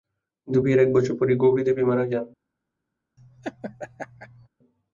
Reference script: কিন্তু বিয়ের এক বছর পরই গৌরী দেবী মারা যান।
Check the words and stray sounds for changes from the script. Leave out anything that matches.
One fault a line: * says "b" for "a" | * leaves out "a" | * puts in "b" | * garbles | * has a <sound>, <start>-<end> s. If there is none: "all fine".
* has a laugh, 3.2-4.5 s